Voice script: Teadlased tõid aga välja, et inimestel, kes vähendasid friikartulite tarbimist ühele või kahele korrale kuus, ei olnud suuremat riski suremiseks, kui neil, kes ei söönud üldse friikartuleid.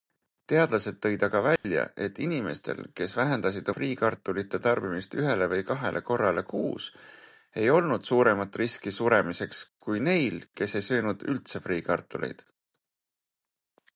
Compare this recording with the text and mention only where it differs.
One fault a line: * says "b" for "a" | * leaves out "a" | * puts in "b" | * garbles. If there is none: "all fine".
all fine